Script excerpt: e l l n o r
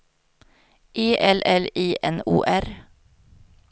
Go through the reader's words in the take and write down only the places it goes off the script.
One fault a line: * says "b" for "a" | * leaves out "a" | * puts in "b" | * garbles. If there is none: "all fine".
* puts in "i"